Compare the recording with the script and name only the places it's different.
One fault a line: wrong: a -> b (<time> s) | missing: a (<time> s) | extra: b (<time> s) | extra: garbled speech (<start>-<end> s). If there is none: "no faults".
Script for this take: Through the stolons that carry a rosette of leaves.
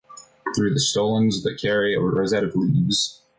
no faults